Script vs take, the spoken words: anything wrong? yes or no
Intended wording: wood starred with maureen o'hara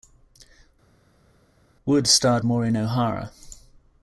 yes